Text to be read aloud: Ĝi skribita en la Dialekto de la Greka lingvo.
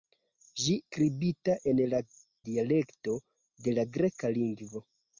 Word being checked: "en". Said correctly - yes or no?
yes